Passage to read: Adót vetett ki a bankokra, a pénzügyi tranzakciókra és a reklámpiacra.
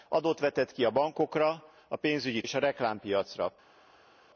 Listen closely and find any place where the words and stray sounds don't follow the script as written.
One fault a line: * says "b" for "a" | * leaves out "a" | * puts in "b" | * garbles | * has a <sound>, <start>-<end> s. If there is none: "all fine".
* leaves out "tranzakciókra"